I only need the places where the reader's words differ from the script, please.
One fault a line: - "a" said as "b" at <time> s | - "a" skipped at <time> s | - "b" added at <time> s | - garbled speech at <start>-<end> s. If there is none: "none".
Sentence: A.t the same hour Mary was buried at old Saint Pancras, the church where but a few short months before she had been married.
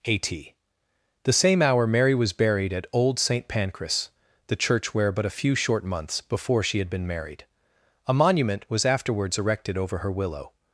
- "A monument was afterwards erected over her willow" added at 8.1 s